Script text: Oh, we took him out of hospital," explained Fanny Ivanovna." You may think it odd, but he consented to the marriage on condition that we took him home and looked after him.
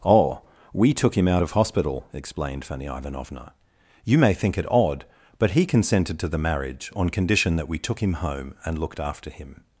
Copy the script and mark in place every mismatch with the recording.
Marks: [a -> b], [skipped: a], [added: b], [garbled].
Oh, we took him out of hospital," explained Fanny Ivanovna." You may think it odd, but he consented to the marriage on condition that we took him home and looked after him.